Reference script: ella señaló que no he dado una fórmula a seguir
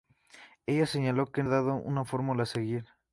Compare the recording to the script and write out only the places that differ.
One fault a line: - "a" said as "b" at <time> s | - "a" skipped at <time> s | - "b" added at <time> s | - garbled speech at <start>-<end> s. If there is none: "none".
- "no" skipped at 1.4 s